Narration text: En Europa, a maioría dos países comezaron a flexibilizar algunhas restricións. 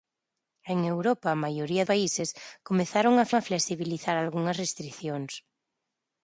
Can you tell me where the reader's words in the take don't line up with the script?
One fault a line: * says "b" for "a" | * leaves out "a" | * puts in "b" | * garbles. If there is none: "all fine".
* leaves out "dos"
* puts in "a"